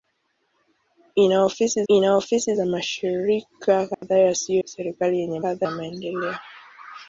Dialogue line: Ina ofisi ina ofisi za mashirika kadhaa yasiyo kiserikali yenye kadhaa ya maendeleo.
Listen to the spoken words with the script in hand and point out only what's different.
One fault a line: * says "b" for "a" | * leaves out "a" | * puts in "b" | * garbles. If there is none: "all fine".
all fine